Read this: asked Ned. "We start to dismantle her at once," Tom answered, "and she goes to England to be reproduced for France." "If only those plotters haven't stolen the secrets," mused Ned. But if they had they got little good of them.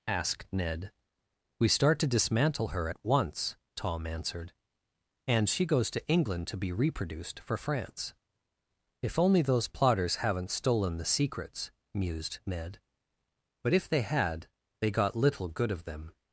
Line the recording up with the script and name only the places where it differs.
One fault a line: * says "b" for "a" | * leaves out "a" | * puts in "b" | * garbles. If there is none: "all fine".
all fine